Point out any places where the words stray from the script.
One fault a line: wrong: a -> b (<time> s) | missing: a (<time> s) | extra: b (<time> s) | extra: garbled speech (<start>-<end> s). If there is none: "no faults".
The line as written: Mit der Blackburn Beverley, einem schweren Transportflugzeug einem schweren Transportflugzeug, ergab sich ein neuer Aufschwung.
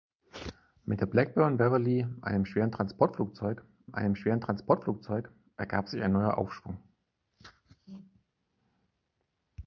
no faults